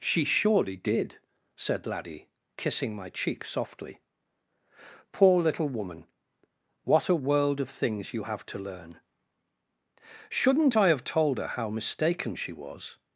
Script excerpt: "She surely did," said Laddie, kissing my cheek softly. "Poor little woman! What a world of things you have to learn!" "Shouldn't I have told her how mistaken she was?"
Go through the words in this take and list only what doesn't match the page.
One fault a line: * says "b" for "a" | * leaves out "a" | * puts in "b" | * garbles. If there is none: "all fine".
all fine